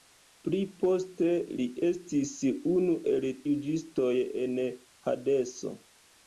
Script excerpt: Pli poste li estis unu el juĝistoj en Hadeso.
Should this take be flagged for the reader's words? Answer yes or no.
no